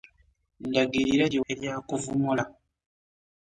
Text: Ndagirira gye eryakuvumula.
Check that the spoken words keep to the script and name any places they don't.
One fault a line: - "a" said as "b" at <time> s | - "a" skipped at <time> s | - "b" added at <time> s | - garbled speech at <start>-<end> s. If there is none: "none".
none